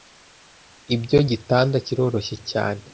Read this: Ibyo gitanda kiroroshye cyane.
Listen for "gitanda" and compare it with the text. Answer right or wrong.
right